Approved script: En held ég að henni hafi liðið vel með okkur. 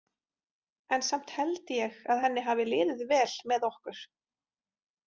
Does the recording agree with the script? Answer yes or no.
no